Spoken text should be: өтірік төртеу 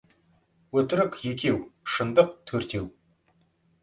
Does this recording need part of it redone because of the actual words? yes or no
yes